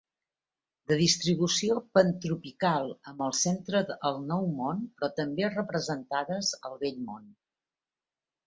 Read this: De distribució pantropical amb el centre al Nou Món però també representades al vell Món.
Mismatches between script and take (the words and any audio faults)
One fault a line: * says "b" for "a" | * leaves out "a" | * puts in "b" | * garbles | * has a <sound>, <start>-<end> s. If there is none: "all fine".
all fine